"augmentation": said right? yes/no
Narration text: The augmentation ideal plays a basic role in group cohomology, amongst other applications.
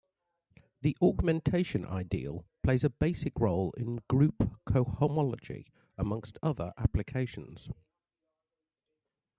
yes